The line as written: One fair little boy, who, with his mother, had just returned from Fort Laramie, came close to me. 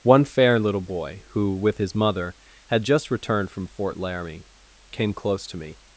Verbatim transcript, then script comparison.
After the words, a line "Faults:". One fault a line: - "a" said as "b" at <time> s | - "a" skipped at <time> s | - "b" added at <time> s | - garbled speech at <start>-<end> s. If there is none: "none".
One fair little boy, who, with his mother, had just returned from Fort Laramie, came close to me.
Faults:
none